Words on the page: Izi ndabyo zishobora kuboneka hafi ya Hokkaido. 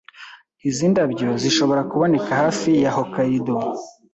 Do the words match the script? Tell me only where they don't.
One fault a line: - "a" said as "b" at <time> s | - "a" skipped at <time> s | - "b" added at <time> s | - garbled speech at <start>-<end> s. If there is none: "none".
none